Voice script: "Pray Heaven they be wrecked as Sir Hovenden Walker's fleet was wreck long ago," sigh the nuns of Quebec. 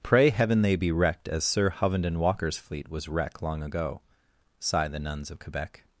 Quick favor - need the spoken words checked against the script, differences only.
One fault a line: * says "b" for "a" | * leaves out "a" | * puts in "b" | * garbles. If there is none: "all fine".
all fine